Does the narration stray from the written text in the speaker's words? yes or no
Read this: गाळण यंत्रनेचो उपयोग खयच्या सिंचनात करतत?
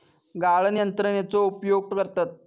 yes